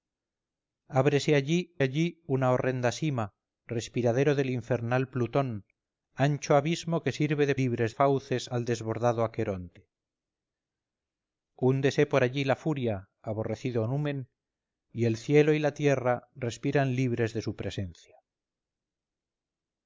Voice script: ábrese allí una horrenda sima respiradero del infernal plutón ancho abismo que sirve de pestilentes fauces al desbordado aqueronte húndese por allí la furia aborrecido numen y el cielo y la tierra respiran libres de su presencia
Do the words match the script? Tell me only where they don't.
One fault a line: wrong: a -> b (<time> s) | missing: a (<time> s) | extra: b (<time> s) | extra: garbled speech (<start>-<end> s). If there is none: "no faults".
extra: allí (1.8 s)
wrong: pestilentes -> libres (7.5 s)